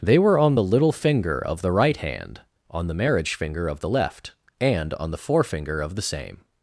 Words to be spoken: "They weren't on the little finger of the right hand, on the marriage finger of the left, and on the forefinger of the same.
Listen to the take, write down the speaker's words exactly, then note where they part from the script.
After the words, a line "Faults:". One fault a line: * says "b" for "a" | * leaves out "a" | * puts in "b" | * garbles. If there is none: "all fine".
"They were on the little finger of the right hand, on the marriage finger of the left, and on the forefinger of the same.
Faults:
* says "were" for "weren't"